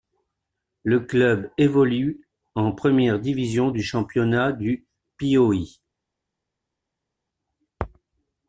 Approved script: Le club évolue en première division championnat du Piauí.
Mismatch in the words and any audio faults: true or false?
true